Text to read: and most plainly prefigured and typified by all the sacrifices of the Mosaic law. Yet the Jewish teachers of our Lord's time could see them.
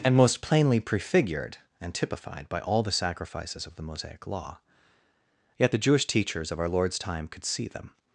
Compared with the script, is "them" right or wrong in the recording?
right